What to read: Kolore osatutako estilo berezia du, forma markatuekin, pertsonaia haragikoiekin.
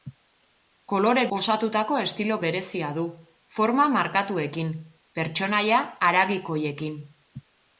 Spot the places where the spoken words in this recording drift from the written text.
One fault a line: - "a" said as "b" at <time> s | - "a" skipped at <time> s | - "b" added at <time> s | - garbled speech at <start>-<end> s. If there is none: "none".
none